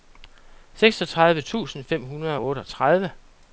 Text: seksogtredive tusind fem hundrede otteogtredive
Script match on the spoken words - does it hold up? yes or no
no